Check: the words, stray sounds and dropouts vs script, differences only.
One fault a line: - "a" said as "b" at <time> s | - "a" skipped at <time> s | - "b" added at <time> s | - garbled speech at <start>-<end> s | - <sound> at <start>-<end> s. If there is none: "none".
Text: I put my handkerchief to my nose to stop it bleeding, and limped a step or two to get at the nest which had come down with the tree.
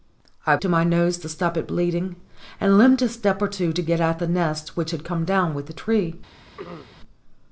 - "put my handkerchief" skipped at 0.6 s
- throat clearing at 6.6-7.0 s